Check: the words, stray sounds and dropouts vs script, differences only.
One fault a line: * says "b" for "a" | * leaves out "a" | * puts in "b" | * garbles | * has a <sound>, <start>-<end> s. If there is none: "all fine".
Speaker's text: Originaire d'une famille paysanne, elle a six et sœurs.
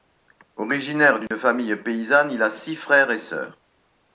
* has a dropout, 1.3-1.3 s
* says "il" for "elle"
* puts in "frères"